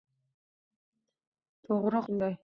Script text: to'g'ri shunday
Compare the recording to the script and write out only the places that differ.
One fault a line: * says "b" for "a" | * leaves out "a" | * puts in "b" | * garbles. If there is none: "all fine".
all fine